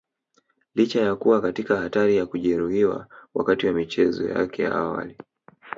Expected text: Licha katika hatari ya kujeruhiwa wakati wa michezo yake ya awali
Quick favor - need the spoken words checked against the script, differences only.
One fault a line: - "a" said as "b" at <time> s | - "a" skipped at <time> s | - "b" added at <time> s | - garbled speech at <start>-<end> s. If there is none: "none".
- "ya kuwa" added at 1.0 s